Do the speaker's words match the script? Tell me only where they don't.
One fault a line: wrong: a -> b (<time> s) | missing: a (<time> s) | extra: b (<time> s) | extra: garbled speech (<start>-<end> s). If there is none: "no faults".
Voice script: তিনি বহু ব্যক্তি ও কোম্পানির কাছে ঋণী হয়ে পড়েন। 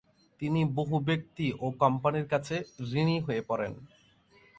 no faults